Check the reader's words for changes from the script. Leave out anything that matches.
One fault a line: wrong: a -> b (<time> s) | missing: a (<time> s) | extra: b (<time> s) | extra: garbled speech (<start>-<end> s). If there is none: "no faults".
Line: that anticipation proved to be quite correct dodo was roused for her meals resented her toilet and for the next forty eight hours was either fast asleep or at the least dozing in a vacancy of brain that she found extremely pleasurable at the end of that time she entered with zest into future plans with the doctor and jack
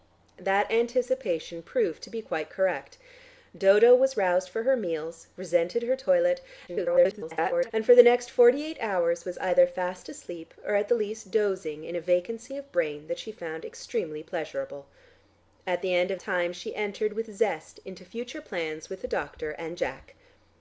extra: garbled speech (6.7-7.7 s)
missing: that (16.2 s)